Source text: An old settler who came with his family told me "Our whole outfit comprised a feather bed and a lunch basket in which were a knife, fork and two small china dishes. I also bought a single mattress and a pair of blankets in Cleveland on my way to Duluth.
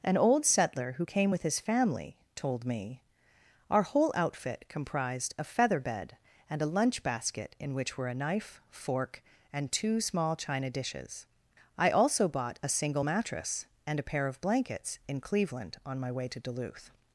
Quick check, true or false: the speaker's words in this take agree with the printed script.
true